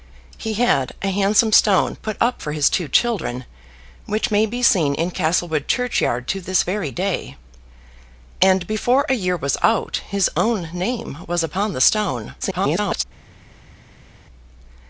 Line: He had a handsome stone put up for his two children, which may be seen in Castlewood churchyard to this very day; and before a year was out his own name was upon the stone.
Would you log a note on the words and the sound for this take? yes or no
yes